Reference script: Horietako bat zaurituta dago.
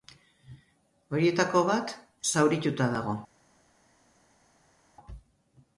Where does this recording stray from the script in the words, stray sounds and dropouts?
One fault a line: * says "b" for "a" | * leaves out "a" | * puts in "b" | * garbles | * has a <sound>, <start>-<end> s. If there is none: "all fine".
all fine